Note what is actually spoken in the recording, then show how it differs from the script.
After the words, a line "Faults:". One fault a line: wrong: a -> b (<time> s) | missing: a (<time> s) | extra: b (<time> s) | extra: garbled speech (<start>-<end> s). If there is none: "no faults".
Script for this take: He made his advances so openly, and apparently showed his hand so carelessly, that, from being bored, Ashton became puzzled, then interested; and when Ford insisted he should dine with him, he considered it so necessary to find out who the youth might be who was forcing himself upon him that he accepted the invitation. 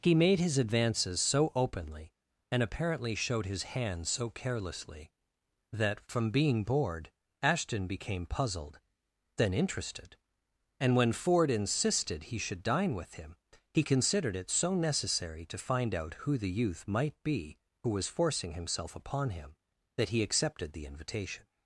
He made his advances so openly, and apparently showed his hand so carelessly, that, from being bored, Ashton became puzzled, then interested; and when Ford insisted he should dine with him, he considered it so necessary to find out who the youth might be who was forcing himself upon him that he accepted the invitation.
Faults:
no faults